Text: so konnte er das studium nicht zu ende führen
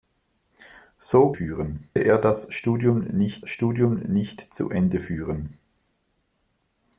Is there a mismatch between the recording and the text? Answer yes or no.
yes